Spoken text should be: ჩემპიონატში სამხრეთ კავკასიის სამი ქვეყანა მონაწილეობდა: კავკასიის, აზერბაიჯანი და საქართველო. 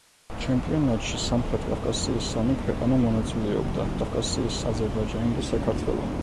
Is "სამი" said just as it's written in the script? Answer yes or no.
yes